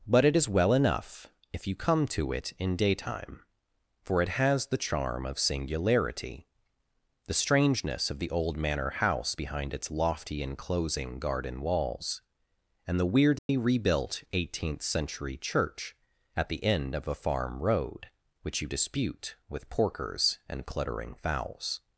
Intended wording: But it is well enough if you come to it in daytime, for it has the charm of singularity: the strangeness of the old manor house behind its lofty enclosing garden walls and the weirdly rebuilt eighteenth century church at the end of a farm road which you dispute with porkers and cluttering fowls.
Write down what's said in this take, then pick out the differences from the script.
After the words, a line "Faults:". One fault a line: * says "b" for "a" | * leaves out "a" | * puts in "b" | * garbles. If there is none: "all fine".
But it is well enough if you come to it in daytime, for it has the charm of singularity: the strangeness of the old manor house behind its lofty enclosing garden walls and the weirdly rebuilt eighteenth century church at the end of a farm road which you dispute with porkers and cluttering fowls.
Faults:
all fine